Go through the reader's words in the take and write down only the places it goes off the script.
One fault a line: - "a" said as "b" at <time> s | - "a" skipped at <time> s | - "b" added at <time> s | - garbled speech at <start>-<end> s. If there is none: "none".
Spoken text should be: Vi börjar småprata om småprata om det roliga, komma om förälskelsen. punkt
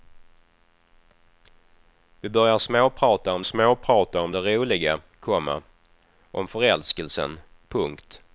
none